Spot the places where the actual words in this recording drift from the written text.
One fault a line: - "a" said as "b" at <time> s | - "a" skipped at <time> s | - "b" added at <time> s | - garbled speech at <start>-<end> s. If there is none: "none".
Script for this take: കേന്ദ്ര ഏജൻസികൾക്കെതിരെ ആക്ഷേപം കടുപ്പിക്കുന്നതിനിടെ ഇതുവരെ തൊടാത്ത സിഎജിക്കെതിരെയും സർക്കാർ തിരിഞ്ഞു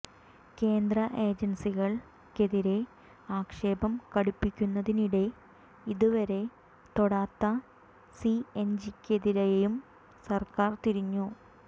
none